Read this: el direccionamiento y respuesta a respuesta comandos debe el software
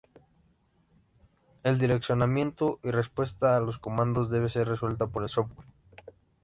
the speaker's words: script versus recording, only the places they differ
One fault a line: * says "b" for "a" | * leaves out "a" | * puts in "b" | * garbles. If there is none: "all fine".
* says "los" for "respuesta"
* puts in "ser resuelta por"